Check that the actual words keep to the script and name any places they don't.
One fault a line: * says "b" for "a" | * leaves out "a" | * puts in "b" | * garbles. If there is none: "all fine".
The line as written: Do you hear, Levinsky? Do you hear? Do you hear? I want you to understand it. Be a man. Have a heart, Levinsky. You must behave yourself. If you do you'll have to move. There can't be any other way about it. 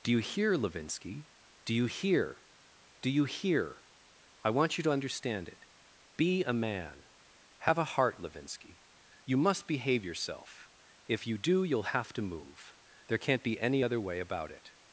all fine